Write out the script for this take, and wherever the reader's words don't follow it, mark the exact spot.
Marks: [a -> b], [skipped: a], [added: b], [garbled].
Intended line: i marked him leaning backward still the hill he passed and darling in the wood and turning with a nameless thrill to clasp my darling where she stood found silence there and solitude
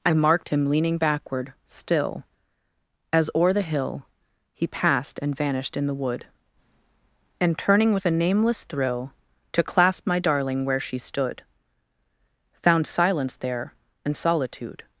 i marked him leaning backward still [added: as o'er] the hill he passed and [darling -> vanished] in the wood and turning with a nameless thrill to clasp my darling where she stood found silence there and solitude